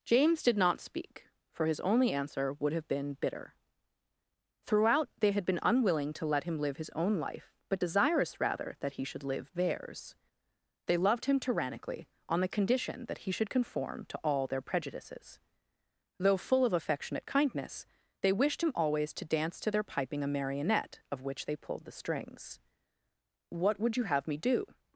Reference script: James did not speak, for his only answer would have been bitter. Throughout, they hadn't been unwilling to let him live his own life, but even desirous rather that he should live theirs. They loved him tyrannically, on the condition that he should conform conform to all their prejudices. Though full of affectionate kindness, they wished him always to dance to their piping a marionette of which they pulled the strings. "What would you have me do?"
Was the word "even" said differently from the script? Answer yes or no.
yes